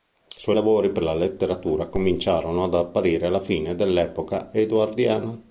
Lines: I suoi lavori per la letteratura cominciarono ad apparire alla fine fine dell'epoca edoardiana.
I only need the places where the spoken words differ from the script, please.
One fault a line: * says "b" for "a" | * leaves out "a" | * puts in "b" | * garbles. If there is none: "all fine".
* leaves out "fine"